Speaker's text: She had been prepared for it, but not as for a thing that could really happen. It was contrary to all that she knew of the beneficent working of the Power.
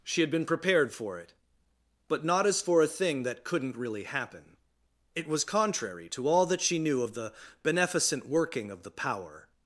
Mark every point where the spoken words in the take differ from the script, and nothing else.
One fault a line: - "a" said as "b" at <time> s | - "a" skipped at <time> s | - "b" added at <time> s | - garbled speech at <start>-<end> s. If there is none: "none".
- "could" said as "couldn't" at 3.4 s